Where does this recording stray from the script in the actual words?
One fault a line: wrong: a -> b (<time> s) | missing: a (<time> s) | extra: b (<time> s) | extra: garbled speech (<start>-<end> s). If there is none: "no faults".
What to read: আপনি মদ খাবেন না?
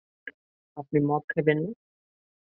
no faults